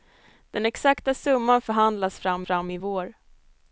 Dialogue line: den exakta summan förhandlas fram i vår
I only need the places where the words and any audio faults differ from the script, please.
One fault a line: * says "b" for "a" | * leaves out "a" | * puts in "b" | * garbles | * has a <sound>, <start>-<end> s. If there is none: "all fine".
* puts in "fram"